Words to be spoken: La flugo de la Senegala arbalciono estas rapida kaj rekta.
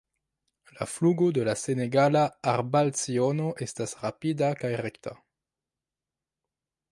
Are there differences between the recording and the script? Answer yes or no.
no